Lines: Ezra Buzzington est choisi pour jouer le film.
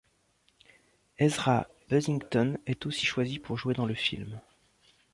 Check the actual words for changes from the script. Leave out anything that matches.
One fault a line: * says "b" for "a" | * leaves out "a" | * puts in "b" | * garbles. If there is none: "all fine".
* puts in "aussi"
* puts in "dans"